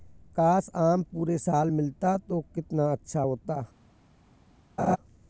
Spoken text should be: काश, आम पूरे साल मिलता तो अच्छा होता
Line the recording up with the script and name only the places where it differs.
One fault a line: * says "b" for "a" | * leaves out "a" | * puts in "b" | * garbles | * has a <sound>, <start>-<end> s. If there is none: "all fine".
* puts in "कितना"
* has a laugh, 4.8-5.0 s